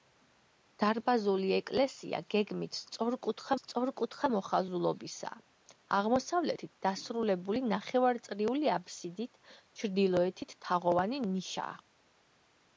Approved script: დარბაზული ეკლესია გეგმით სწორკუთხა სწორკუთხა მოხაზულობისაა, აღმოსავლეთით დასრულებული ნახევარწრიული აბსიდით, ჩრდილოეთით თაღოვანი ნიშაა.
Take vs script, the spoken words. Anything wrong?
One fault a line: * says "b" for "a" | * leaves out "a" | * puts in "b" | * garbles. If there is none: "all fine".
all fine